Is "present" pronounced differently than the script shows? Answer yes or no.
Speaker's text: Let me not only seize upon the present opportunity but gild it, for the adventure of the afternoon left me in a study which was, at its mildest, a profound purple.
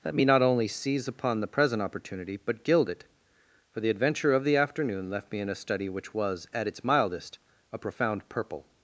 no